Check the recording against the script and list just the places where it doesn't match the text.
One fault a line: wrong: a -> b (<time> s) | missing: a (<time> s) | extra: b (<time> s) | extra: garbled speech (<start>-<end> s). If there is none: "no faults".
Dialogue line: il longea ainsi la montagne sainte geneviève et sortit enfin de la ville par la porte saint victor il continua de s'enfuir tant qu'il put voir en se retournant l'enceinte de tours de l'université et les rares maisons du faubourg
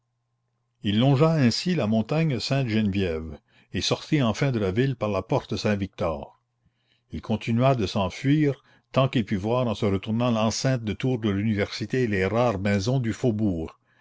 no faults